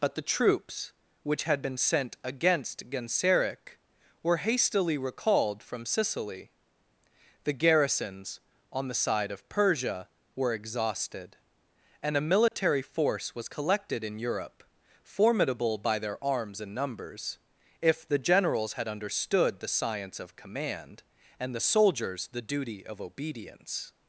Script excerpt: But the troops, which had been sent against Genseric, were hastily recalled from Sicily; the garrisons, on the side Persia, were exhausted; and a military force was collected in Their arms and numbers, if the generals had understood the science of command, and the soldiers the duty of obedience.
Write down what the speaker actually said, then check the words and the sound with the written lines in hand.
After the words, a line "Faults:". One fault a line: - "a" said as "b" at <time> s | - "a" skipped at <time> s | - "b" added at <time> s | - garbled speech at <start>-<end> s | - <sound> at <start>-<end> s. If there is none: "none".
But the troops, which had been sent against Genseric, were hastily recalled from Sicily; the garrisons, on the side of Persia, were exhausted; and a military force was collected in Europe, formidable by their arms and numbers, if the generals had understood the science of command, and the soldiers the duty of obedience.
Faults:
- "of" added at 9.3 s
- dropout at 12.5-12.5 s
- "Europe formidable by" added at 14.2 s